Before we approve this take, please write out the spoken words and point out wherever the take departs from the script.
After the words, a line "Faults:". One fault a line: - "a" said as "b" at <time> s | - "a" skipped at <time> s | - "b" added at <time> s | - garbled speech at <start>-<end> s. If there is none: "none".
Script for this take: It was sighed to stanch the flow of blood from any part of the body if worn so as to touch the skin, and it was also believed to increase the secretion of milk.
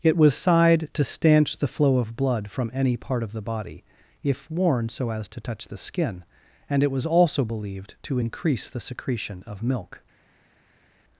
It was sighed to stanch the flow of blood from any part of the body if worn so as to touch the skin, and it was also believed to increase the secretion of milk.
Faults:
none